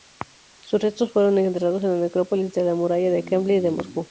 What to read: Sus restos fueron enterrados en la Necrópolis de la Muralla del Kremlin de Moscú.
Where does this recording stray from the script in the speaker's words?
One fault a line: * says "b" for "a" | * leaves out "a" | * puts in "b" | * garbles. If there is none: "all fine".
all fine